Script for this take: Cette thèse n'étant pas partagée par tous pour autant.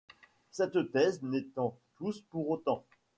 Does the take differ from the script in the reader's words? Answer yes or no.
yes